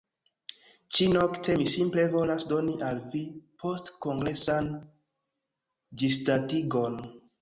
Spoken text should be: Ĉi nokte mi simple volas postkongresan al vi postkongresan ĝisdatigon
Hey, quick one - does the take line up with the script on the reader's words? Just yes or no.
no